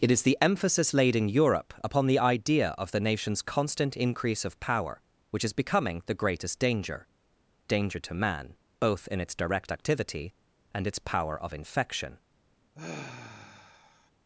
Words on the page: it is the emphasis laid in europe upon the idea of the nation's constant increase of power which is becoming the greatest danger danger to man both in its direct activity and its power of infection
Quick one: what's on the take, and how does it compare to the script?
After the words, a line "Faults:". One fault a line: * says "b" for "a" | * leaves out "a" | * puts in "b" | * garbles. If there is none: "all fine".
it is the emphasis laid in europe upon the idea of the nation's constant increase of power which is becoming the greatest danger danger to man both in its direct activity and its power of infection
Faults:
all fine